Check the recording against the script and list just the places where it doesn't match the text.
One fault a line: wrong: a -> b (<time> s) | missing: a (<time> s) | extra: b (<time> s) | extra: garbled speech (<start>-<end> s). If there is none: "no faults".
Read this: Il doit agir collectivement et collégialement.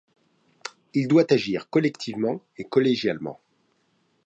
no faults